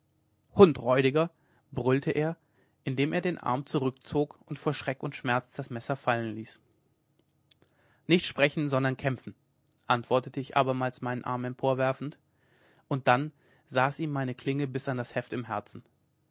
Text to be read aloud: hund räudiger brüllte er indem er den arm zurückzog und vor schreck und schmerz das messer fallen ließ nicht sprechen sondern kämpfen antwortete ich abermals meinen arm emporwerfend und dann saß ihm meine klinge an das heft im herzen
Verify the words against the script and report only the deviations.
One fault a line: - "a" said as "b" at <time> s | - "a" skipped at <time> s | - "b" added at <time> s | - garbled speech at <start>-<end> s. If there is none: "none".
- "bis" added at 14.7 s